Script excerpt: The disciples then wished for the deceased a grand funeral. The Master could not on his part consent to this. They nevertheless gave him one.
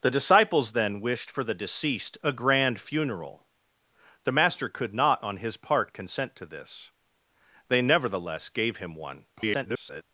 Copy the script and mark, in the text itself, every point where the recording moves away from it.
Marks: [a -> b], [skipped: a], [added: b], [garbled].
The disciples then wished for the deceased a grand funeral. The Master could not on his part consent to this. They nevertheless gave him one. [garbled]